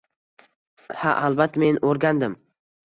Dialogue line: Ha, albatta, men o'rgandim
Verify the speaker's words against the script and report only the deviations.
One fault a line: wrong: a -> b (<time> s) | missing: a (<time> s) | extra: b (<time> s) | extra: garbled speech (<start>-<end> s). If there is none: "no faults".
no faults